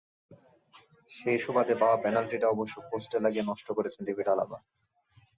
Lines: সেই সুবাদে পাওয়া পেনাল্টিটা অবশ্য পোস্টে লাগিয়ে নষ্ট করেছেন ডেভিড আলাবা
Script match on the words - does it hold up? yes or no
yes